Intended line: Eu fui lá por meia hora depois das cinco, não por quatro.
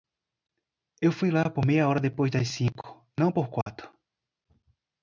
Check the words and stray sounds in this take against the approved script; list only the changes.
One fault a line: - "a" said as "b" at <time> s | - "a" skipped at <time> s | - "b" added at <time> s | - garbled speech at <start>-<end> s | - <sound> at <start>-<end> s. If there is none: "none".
- dropout at 3.6-3.7 s